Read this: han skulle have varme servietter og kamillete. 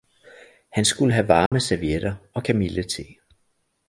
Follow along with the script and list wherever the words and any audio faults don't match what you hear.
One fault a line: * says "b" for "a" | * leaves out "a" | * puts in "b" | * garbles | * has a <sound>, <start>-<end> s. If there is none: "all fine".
* has a dropout, 1.5-1.5 s